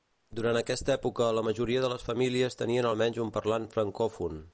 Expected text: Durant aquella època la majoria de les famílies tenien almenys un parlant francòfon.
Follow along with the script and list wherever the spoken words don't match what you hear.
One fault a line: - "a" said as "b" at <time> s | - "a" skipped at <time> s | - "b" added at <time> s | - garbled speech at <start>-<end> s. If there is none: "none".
- "aquella" said as "aquesta" at 0.6 s